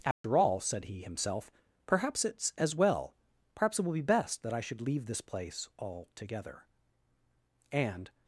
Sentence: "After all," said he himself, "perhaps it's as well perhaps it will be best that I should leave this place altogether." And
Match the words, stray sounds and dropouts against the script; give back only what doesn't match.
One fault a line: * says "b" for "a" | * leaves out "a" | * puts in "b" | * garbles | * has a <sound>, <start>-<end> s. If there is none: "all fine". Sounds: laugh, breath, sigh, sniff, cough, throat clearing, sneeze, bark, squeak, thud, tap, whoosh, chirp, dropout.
* has a dropout, 0.1-0.2 s